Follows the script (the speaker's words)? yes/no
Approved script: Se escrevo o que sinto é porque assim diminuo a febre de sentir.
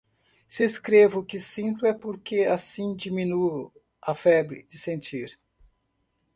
yes